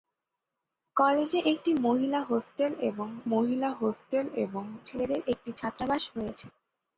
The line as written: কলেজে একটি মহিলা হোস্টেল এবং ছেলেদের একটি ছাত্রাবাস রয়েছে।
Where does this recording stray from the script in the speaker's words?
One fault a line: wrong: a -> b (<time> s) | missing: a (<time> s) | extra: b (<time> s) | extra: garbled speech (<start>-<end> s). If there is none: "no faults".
extra: মহিলা হোস্টেল এবং (3.3 s)